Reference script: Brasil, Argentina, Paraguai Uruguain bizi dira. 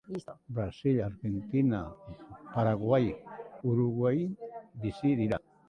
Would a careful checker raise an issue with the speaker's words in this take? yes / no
no